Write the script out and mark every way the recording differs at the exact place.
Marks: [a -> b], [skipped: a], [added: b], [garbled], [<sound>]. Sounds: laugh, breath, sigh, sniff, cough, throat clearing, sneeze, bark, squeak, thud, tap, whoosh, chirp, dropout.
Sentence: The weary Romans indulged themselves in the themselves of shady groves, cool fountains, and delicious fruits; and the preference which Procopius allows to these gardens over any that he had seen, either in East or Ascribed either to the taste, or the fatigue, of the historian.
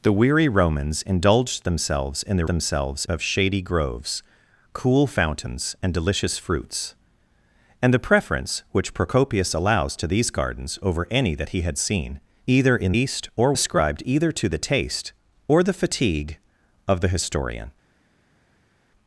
The weary Romans indulged themselves in the themselves of shady groves, cool fountains, and delicious fruits; and the preference which Procopius allows to these gardens over any that he had seen, either in East or Ascribed either to the taste, or the fatigue, of the historian.